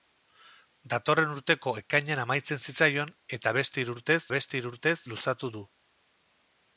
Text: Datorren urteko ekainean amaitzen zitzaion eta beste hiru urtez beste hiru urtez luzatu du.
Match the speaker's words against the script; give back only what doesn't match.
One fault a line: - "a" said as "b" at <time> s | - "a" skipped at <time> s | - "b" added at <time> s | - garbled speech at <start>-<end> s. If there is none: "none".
none